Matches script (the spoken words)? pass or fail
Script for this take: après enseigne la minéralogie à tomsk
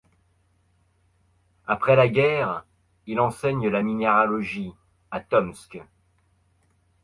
fail